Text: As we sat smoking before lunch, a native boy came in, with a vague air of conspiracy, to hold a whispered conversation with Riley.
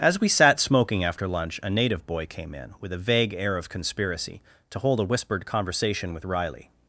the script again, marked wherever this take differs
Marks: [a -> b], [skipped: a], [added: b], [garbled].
As we sat smoking [before -> after] lunch, a native boy came in, with a vague air of conspiracy, to hold a whispered conversation with Riley.